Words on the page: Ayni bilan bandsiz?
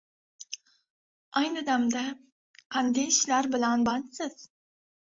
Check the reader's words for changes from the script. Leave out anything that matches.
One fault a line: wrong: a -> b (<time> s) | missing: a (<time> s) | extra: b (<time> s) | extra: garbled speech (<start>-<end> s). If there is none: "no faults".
extra: damda qanday ishlar (1.7 s)